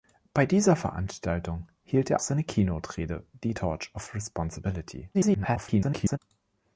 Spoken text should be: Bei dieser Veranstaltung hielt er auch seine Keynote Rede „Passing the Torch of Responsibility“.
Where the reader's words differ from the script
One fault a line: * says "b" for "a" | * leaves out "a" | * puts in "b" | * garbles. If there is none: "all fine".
* leaves out "auch"
* leaves out "Passing"
* garbles